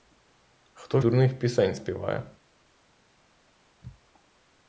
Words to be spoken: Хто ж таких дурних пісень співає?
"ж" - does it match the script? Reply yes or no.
no